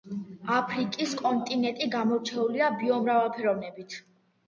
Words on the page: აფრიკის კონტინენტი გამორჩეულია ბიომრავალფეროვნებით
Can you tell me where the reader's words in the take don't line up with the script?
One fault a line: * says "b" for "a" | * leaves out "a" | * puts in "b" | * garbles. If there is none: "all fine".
all fine